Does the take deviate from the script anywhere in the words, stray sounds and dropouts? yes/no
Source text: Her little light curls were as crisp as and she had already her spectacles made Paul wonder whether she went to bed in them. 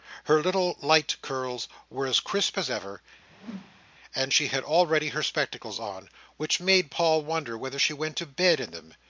yes